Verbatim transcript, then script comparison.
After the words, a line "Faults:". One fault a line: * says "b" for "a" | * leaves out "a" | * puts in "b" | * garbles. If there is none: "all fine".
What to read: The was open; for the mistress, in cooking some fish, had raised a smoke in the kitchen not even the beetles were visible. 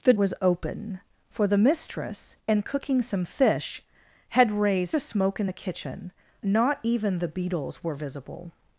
The was open; for the mistress, in cooking some fish, had raised a smoke in the kitchen not even the beetles were visible.
Faults:
all fine